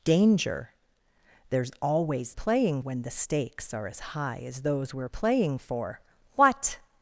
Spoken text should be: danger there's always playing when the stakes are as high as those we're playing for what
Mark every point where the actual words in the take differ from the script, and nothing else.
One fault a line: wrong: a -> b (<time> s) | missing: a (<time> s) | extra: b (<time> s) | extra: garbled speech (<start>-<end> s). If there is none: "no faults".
no faults